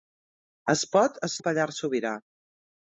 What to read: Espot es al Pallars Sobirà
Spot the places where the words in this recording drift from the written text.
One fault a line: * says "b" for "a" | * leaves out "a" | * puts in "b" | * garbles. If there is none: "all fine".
all fine